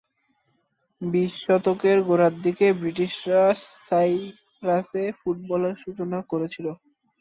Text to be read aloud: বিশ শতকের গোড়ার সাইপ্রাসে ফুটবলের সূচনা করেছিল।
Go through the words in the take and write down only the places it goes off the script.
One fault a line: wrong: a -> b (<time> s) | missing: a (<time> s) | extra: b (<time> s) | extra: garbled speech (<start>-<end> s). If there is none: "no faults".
extra: দিকে ব্রিটিশরা (2.4 s)